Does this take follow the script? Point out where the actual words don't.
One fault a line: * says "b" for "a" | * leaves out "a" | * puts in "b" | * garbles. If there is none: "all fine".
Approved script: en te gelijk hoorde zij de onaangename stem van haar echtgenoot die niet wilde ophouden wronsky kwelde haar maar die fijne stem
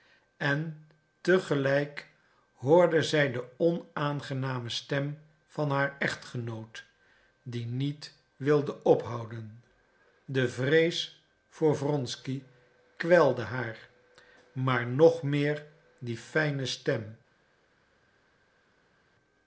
* puts in "de vrees voor"
* puts in "nog meer"